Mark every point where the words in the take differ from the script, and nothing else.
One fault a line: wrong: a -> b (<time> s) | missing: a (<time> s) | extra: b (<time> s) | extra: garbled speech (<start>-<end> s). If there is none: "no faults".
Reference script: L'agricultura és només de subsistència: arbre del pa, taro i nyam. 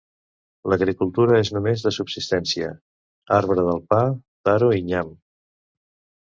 no faults